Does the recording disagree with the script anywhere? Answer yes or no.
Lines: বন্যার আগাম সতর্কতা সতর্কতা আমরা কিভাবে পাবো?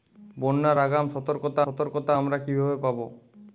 no